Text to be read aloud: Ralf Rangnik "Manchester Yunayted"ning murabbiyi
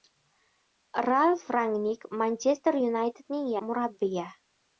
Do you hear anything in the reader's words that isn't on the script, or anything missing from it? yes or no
no